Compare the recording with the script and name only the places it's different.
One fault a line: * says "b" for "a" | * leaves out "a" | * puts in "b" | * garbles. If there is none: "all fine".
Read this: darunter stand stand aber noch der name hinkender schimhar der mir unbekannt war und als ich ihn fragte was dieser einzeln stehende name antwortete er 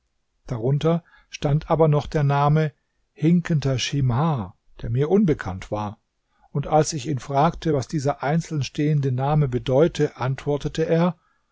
* leaves out "stand"
* puts in "bedeute"